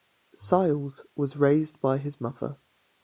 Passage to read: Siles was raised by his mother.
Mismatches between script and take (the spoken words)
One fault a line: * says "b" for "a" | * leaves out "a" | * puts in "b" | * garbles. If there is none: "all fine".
all fine